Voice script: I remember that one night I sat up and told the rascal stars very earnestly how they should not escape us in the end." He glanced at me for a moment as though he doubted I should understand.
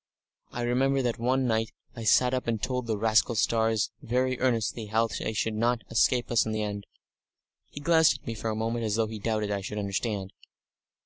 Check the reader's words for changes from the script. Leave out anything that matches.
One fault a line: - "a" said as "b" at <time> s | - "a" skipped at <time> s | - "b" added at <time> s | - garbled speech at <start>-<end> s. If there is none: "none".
none